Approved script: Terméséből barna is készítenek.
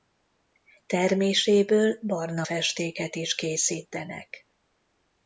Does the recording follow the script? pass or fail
fail